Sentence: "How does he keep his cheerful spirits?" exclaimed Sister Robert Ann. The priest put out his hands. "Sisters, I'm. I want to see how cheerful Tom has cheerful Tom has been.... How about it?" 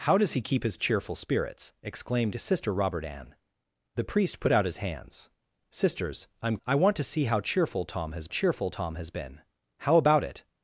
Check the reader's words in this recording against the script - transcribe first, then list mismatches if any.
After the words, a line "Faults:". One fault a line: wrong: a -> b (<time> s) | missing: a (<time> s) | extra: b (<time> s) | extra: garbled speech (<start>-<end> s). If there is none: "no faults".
"How does he keep his cheerful spirits?" exclaimed Sister Robert Ann. The priest put out his hands. "Sisters, I'm. I want to see how cheerful Tom has cheerful Tom has been.... How about it?"
Faults:
no faults